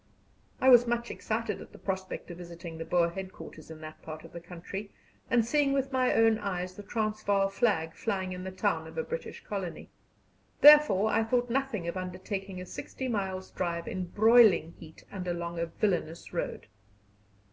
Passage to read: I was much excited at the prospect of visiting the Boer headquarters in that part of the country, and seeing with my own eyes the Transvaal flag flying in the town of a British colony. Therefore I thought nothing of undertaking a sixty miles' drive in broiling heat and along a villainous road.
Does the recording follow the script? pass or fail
pass